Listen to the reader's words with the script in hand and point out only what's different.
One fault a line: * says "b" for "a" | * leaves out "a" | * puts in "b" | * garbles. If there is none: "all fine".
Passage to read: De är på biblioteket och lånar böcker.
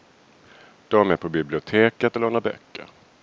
all fine